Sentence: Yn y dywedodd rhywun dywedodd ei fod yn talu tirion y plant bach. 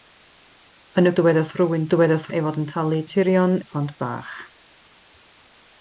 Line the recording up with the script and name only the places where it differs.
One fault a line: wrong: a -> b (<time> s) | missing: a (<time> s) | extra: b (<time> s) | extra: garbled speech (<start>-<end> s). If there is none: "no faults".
no faults